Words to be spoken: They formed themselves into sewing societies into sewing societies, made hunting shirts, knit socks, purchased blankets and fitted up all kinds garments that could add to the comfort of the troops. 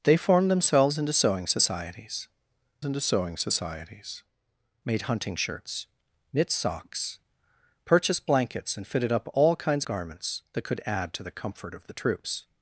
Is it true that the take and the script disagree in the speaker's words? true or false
false